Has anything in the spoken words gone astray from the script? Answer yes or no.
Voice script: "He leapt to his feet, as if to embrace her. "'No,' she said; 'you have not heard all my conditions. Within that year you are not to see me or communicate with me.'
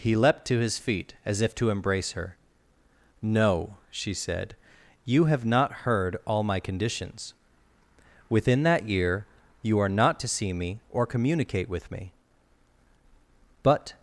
yes